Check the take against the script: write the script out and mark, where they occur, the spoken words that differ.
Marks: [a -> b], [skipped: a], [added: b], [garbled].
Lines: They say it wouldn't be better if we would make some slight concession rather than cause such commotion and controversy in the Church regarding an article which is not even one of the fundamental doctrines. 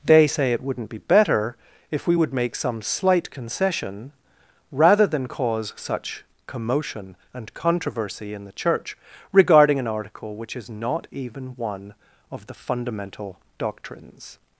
They say it wouldn't be better if we would make some slight concession rather than cause such commotion and controversy in the Church regarding an article which is not even one of the fundamental doctrines.